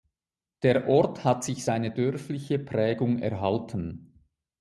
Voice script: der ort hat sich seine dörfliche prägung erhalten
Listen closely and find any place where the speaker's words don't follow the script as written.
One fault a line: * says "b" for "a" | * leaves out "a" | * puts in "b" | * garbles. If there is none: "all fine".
all fine